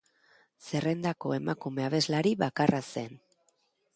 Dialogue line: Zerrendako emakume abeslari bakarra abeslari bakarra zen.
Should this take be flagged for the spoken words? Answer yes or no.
yes